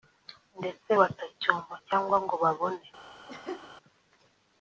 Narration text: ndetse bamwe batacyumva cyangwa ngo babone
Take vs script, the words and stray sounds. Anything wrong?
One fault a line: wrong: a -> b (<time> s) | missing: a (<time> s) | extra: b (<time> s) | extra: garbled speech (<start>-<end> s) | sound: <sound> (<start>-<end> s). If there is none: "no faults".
missing: bamwe (0.9 s)
sound: laugh (3.3-3.7 s)